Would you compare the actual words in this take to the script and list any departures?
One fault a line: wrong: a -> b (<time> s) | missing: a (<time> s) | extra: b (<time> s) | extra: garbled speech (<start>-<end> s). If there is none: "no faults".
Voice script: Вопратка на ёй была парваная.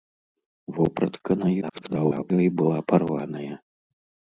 extra: garbled speech (1.6-2.3 s)